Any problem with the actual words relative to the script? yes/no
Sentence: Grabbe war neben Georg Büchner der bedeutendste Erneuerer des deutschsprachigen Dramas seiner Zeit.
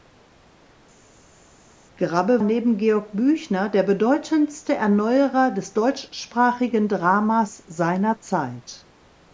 yes